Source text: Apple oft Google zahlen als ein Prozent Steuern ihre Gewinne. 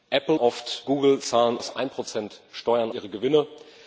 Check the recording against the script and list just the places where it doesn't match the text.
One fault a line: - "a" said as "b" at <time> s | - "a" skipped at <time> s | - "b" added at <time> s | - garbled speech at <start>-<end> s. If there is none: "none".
none